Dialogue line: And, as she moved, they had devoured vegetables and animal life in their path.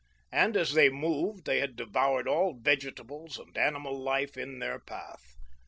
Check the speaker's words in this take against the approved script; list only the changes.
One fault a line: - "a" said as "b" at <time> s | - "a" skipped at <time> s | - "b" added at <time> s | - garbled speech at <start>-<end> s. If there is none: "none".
- "she" said as "they" at 0.7 s
- "all" added at 2.3 s